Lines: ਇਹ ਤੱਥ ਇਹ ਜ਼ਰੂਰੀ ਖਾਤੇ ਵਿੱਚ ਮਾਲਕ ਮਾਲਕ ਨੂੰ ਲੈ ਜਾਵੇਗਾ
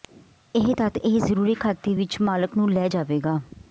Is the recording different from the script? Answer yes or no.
yes